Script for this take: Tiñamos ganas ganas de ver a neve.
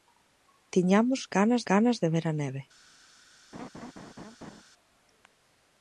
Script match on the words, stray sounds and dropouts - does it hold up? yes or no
no